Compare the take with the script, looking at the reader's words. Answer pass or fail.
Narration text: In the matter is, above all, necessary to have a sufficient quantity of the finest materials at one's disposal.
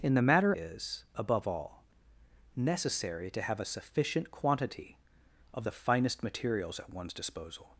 pass